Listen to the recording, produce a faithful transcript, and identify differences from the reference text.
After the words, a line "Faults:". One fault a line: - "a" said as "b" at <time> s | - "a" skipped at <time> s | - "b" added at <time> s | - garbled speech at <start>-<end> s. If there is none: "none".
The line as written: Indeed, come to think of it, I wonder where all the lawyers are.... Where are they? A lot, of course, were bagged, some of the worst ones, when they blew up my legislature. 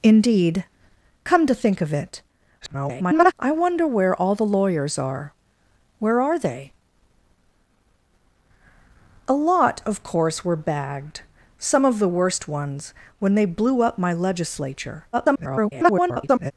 Indeed, come to think of it, [garbled] I wonder where all the lawyers are.... Where are they? A lot, of course, were bagged, some of the worst ones, when they blew up my legislature. [garbled]
Faults:
- garbled speech at 2.6-3.3 s
- garbled speech at 15.1-16.5 s